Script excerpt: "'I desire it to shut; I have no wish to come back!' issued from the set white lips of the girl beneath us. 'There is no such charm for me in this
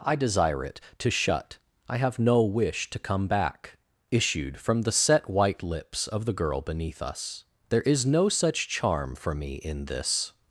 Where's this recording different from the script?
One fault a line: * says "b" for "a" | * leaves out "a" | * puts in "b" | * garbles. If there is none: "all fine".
all fine